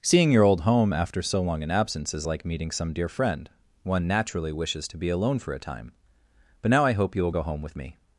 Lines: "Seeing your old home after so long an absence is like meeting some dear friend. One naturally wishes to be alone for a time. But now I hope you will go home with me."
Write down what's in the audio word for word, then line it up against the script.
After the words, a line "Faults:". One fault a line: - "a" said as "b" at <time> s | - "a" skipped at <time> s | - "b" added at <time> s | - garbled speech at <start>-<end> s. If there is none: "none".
"Seeing your old home after so long an absence is like meeting some dear friend. One naturally wishes to be alone for a time. But now I hope you will go home with me."
Faults:
none